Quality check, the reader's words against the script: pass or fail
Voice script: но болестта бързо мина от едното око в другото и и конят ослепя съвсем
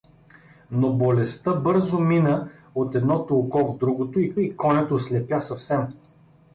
pass